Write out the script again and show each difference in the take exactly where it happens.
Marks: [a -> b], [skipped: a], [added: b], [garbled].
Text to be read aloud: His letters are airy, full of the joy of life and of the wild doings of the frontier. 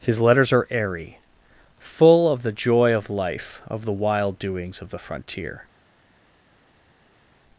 His letters are airy, full of the joy of life [skipped: and] of the wild doings of the frontier.